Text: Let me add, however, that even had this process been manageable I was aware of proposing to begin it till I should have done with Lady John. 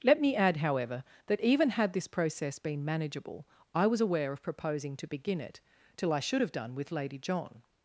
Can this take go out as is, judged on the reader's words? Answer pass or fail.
pass